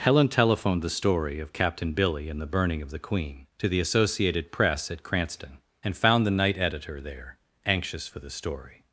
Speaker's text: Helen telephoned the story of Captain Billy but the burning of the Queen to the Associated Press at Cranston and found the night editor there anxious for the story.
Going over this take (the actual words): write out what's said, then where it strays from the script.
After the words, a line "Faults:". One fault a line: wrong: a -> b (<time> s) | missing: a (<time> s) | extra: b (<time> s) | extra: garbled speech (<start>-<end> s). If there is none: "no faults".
Helen telephoned the story of Captain Billy and the burning of the Queen to the Associated Press at Cranston and found the night editor there anxious for the story.
Faults:
wrong: but -> and (2.3 s)